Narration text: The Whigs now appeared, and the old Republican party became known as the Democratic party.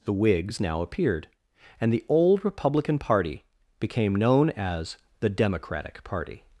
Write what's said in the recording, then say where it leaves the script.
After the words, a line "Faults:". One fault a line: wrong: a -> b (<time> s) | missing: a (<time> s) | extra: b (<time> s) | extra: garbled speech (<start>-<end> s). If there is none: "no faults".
The Whigs now appeared, and the old Republican party became known as the Democratic party.
Faults:
no faults